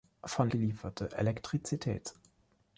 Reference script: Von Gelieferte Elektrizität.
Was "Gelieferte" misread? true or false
false